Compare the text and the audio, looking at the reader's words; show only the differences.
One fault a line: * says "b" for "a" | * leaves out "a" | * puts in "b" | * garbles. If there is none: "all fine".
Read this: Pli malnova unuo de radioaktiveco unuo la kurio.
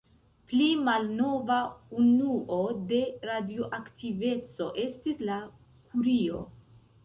* says "estis" for "unuo"